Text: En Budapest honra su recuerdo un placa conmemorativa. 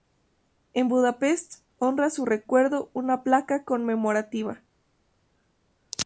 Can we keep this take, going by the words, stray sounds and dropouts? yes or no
no